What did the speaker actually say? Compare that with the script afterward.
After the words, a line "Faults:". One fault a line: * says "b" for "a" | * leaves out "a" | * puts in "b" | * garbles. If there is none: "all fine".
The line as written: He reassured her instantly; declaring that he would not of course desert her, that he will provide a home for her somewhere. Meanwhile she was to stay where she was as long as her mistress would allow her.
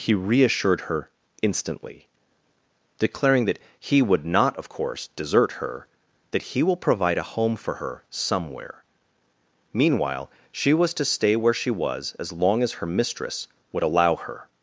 He reassured her instantly; declaring that he would not of course desert her, that he will provide a home for her somewhere. Meanwhile she was to stay where she was as long as her mistress would allow her.
Faults:
all fine